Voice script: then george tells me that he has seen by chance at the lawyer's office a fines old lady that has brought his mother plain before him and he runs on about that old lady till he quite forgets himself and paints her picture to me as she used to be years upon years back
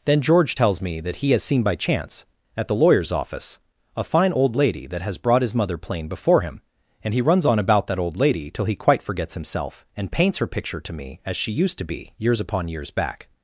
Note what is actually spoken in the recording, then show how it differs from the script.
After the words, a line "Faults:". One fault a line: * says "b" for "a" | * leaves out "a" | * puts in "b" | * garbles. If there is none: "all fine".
then george tells me that he has seen by chance at the lawyer's office a fine old lady that has brought his mother plain before him and he runs on about that old lady till he quite forgets himself and paints her picture to me as she used to be years upon years back
Faults:
* says "fine" for "fines"